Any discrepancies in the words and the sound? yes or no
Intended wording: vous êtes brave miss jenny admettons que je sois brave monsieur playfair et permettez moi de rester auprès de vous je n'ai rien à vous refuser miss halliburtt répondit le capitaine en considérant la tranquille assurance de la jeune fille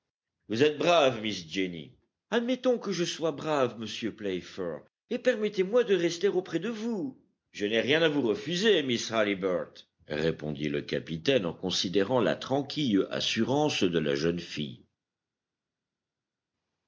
no